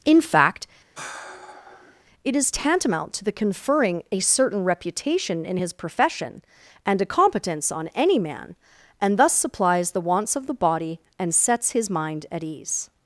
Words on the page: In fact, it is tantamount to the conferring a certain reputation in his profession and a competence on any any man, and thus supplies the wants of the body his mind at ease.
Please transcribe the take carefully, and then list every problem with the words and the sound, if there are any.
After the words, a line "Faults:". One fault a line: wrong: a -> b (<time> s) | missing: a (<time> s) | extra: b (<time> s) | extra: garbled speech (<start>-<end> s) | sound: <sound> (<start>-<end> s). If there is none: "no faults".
In fact, it is tantamount to the conferring a certain reputation in his profession and a competence on any man, and thus supplies the wants of the body and sets his mind at ease.
Faults:
sound: sigh (1.0-2.0 s)
missing: any (8.2 s)
extra: and sets (11.2 s)